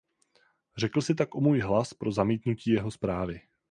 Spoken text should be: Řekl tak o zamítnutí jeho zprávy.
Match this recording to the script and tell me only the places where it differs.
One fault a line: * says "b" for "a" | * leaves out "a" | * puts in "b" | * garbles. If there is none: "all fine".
* puts in "si"
* puts in "můj hlas pro"